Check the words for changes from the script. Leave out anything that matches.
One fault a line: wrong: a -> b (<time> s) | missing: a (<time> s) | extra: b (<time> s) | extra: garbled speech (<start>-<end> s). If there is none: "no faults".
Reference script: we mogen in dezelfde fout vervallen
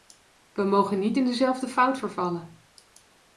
extra: niet (1.0 s)